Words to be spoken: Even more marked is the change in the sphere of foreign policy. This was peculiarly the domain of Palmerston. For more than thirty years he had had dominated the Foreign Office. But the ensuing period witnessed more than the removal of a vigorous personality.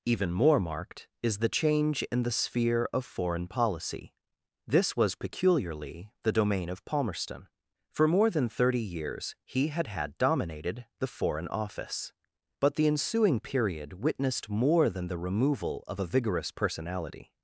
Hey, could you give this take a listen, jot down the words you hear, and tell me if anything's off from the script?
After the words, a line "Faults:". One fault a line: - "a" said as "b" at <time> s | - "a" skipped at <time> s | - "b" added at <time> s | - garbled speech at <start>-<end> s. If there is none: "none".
Even more marked is the change in the sphere of foreign policy. This was peculiarly the domain of Palmerston. For more than thirty years he had had dominated the Foreign Office. But the ensuing period witnessed more than the removal of a vigorous personality.
Faults:
none